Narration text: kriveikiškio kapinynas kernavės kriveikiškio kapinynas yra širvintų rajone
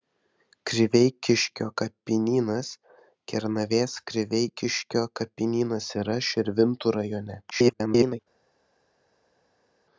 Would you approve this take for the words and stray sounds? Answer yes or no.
no